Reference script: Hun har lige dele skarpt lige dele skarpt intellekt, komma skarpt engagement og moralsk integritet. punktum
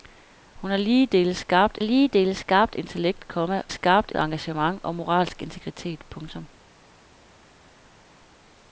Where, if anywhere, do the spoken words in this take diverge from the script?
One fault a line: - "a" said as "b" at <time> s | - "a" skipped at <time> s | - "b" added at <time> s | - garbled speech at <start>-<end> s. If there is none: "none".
none